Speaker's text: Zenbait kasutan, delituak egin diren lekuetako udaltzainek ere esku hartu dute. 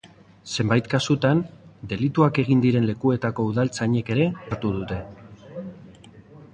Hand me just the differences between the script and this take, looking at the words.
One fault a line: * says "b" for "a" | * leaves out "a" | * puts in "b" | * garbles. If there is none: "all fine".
* leaves out "esku"